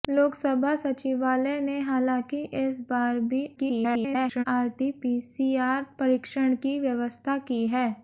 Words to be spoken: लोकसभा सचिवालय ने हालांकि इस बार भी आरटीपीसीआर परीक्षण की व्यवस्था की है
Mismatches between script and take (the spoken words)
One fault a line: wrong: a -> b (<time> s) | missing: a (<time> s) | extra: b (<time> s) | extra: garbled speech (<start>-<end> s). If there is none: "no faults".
extra: garbled speech (3.6-4.4 s)